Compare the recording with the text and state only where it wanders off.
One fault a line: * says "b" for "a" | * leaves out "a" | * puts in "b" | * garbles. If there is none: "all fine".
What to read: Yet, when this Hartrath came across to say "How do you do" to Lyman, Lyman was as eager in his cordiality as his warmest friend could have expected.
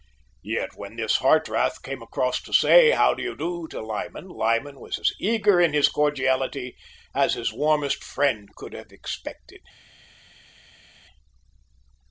all fine